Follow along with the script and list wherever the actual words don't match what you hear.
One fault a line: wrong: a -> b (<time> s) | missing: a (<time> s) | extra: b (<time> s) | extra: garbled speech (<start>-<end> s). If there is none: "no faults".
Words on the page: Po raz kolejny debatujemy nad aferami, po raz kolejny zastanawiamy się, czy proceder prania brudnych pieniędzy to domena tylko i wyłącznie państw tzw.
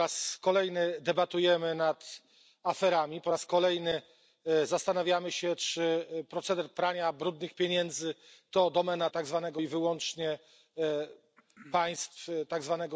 wrong: tylko -> tzw (9.1 s)